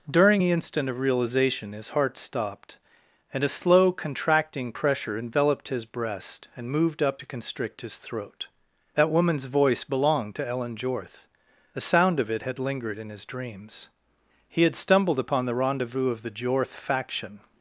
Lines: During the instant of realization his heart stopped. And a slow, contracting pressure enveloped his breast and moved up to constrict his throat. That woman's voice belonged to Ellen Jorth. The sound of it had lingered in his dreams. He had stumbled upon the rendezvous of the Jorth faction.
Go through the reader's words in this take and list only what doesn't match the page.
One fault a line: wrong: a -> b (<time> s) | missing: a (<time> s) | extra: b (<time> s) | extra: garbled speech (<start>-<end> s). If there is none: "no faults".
no faults